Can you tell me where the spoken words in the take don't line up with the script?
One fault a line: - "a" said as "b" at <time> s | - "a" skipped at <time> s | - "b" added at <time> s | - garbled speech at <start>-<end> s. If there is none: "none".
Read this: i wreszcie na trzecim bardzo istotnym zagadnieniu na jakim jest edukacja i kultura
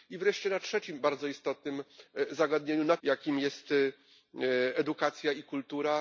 none